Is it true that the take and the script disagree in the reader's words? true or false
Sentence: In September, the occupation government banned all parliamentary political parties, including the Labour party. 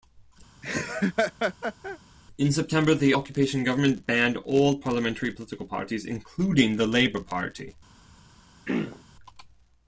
false